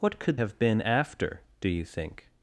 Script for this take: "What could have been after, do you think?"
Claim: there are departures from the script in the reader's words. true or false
false